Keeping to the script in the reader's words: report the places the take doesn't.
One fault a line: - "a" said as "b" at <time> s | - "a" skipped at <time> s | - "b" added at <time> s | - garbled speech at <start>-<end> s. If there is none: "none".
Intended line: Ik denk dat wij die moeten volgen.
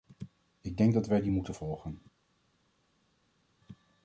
none